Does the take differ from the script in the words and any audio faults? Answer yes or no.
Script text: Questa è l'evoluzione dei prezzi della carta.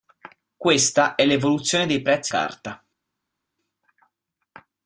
yes